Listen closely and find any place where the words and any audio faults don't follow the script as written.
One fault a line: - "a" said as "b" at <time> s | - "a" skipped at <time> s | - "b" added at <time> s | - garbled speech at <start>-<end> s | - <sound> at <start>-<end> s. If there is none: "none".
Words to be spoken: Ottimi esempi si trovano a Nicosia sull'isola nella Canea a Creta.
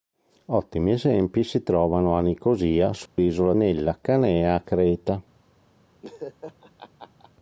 - dropout at 3.1-3.2 s
- laugh at 6.0-7.3 s